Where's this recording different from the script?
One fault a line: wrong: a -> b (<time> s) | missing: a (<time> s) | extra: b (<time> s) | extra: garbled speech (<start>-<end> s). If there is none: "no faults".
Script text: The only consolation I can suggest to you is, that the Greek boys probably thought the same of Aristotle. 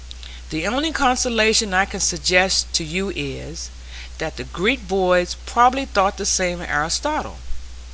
no faults